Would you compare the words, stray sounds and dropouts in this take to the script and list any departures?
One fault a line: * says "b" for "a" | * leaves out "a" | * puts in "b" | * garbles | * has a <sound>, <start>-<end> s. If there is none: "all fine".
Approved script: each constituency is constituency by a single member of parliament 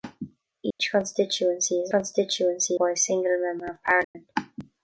* has a dropout, 0.7-0.8 s
* has a dropout, 4.0-4.1 s